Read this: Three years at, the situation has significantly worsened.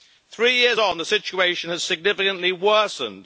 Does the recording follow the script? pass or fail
fail